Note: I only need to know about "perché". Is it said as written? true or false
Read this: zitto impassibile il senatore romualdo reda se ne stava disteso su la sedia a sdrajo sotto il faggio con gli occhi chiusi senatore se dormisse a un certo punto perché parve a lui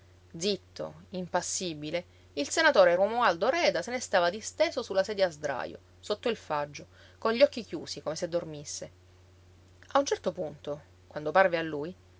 false